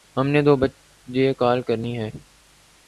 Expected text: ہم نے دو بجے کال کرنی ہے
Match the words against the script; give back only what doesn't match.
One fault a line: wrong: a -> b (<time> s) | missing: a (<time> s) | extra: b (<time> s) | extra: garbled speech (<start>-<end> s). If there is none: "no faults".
no faults